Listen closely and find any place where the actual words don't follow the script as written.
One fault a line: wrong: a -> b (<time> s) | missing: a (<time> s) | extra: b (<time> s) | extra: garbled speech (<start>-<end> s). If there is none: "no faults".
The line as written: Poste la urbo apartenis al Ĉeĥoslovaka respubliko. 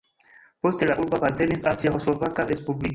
no faults